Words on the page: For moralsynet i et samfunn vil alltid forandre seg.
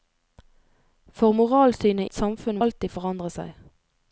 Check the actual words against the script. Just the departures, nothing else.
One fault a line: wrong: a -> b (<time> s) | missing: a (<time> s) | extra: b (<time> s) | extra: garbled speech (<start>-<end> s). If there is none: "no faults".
missing: i (2.1 s)
missing: vil (2.6 s)